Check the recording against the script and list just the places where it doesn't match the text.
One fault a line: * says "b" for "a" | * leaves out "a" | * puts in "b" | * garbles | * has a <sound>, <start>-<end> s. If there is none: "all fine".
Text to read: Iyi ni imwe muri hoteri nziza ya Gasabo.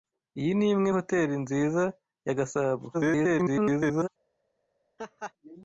* leaves out "muri"
* garbles
* has a laugh, 5.0-5.3 s